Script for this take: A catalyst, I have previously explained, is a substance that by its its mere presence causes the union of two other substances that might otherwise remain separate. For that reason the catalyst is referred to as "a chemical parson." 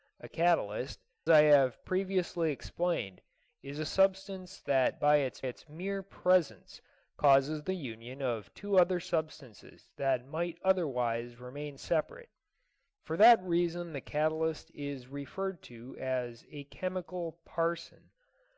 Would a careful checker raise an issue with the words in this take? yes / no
no